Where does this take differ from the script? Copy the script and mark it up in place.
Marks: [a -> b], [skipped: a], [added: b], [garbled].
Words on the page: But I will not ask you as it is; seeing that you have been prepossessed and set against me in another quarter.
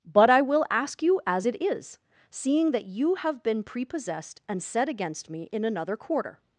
But I will [skipped: not] ask you as it is; seeing that you have been prepossessed and set against me in another quarter.